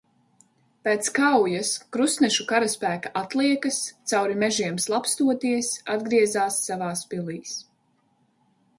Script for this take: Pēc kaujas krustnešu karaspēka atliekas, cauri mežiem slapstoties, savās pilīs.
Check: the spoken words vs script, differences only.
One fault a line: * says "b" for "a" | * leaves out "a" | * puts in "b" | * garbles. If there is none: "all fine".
* puts in "atgriezās"